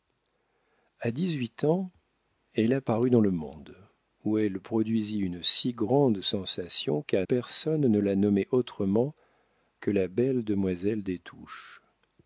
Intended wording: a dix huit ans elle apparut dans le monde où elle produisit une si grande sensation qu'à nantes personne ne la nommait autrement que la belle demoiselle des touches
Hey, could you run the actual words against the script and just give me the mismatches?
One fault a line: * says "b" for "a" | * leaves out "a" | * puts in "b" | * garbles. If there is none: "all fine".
* leaves out "nantes"